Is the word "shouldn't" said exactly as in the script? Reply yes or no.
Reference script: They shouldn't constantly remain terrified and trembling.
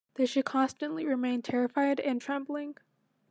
no